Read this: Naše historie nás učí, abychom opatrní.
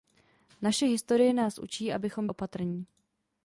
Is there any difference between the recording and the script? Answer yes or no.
no